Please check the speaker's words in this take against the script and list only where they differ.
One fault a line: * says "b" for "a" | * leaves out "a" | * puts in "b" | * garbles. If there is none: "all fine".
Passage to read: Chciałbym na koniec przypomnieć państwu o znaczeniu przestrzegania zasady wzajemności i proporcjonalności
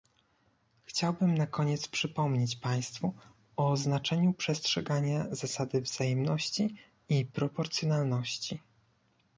all fine